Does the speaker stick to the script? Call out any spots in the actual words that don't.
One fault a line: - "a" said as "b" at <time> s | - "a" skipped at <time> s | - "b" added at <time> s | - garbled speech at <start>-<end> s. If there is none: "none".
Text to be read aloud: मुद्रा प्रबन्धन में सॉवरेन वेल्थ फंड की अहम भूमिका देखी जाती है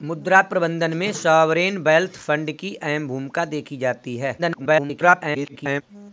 - garbled speech at 4.4-5.8 s